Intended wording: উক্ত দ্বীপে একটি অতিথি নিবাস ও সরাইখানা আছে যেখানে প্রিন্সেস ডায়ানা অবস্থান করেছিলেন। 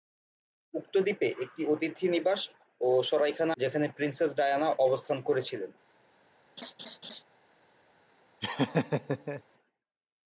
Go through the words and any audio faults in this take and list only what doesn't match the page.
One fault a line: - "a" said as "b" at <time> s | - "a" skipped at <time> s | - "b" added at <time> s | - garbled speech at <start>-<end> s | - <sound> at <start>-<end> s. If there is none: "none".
- "আছে" skipped at 3.5 s
- laugh at 6.6-7.2 s
- laugh at 8.4-9.4 s